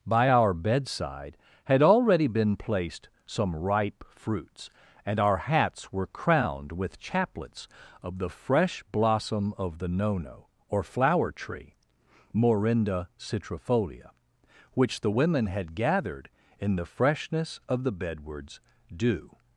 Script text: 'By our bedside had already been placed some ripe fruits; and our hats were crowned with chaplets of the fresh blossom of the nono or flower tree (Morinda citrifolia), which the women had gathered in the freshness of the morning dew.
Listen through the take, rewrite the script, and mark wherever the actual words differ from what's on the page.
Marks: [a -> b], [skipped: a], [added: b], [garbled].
'By our bedside had already been placed some ripe fruits; and our hats were crowned with chaplets of the fresh blossom of the nono or flower tree (Morinda citrifolia), which the women had gathered in the freshness of the [morning -> bedwards] dew.